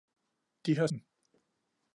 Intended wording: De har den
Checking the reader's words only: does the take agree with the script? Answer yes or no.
yes